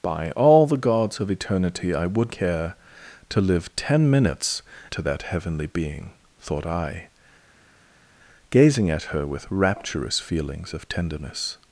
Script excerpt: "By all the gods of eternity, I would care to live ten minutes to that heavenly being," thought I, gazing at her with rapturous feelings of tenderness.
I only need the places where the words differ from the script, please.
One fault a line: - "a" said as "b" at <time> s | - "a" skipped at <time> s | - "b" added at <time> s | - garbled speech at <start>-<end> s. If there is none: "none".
none